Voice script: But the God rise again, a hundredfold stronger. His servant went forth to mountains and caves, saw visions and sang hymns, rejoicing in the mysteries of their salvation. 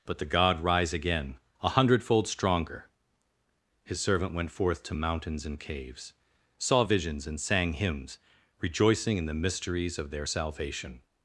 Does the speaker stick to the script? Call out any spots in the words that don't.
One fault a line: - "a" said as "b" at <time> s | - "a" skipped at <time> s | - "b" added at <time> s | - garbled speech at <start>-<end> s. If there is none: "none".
none